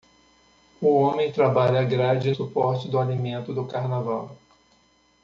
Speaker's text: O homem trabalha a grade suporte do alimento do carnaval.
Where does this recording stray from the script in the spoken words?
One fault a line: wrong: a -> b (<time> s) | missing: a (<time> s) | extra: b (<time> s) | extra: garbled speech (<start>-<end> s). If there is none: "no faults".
no faults